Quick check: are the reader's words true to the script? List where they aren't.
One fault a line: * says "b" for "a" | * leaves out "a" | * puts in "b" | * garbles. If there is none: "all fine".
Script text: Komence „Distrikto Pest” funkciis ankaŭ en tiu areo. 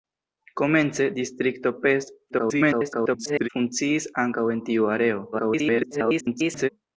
* garbles
* garbles